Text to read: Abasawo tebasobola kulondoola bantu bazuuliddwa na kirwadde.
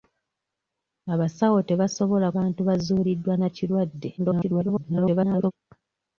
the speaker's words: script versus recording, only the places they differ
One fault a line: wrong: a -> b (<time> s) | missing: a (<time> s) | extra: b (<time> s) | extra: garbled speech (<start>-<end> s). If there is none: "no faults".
missing: kulondoola (2.3 s)
extra: garbled speech (4.2-5.5 s)